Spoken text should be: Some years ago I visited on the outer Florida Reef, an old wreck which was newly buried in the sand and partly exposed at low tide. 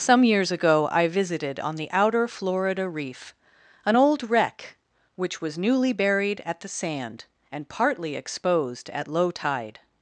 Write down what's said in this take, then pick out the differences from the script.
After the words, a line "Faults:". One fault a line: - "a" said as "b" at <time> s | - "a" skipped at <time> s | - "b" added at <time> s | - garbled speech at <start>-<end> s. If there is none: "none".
Some years ago I visited on the outer Florida Reef, an old wreck which was newly buried at the sand and partly exposed at low tide.
Faults:
- "in" said as "at" at 6.5 s